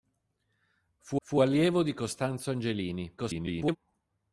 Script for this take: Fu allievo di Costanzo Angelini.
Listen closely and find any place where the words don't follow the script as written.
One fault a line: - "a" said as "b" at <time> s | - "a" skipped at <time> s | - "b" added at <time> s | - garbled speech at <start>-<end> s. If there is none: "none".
- "fu" added at 1.2 s
- garbled speech at 3.2-3.8 s